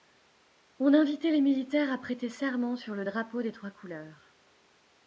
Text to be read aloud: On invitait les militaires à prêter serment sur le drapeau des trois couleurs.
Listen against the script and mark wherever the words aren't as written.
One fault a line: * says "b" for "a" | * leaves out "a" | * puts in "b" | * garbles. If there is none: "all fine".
all fine